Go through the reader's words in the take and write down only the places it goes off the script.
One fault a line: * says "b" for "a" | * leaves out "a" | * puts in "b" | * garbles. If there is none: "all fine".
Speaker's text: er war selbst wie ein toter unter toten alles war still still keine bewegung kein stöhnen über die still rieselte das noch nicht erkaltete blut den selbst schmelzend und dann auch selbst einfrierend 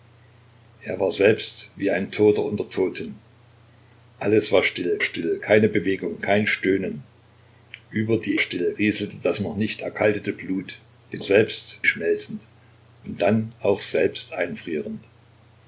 all fine